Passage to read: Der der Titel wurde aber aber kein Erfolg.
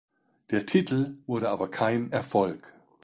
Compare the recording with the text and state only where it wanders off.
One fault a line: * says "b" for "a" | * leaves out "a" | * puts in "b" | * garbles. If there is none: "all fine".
* leaves out "der"
* leaves out "aber"